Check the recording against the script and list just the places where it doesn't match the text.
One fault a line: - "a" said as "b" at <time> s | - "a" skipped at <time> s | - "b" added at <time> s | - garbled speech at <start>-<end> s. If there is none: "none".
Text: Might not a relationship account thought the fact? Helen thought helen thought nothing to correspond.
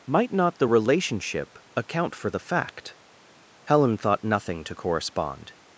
- "a" said as "the" at 0.6 s
- "thought" said as "for" at 2.1 s
- "helen thought" skipped at 4.2 s